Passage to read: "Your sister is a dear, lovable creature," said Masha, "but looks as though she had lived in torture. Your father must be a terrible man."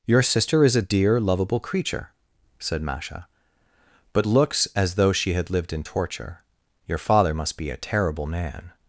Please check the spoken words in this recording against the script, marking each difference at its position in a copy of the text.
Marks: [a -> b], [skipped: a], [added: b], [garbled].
"Your sister is a dear, lovable creature," said Masha, "but looks as though she had lived in torture. Your father must be a terrible man."